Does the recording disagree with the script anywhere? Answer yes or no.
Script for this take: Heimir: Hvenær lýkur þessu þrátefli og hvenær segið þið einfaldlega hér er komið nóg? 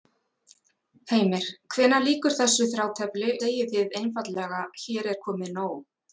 yes